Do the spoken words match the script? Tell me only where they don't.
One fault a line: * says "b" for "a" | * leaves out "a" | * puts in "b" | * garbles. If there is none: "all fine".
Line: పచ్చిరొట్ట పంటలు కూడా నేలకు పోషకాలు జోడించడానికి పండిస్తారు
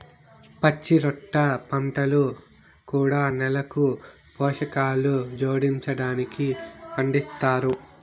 all fine